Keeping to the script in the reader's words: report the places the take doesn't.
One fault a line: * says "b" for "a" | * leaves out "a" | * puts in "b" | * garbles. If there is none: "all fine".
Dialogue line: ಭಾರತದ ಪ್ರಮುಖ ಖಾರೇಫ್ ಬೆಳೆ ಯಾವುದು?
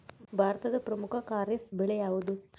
all fine